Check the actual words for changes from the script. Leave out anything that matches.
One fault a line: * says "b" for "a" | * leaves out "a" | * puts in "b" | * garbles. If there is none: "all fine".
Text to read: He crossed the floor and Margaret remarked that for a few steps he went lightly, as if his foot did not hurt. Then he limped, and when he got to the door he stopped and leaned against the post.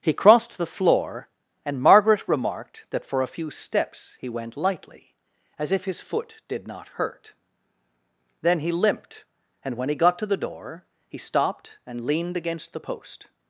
all fine